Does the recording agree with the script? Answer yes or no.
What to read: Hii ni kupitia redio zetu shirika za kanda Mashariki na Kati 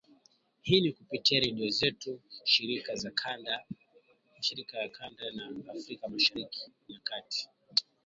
no